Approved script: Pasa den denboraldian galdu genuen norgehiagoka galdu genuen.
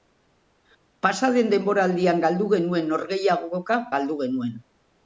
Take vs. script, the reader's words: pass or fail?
pass